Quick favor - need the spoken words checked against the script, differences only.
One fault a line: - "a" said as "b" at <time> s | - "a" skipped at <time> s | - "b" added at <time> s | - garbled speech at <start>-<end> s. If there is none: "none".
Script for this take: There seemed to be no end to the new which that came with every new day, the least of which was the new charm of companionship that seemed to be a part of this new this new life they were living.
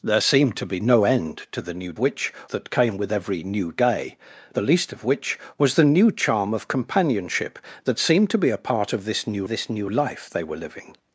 none